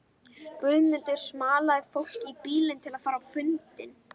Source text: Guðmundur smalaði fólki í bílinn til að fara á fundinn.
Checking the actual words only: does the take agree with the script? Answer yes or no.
yes